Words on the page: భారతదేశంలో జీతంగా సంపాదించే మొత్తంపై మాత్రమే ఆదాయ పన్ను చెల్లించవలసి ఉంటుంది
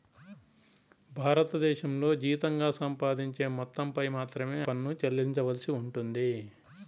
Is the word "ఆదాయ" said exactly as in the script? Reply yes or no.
no